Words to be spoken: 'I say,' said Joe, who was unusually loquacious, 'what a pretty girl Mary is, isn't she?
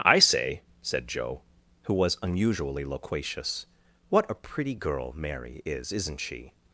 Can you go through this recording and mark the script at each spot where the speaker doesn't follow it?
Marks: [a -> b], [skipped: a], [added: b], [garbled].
'I say,' said Joe, who was unusually loquacious, 'what a pretty girl Mary is, isn't she?